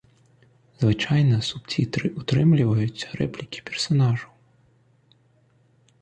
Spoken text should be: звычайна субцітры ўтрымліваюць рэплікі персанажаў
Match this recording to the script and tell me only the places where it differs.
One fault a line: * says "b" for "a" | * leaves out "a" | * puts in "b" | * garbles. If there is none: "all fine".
all fine